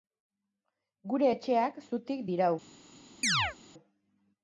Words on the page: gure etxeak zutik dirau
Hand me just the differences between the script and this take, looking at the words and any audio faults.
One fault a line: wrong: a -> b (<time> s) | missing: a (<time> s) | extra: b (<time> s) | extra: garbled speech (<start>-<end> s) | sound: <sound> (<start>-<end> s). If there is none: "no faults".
sound: chirp (3.2-3.6 s)